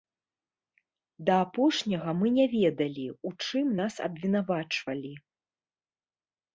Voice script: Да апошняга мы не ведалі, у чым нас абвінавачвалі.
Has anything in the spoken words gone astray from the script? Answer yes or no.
no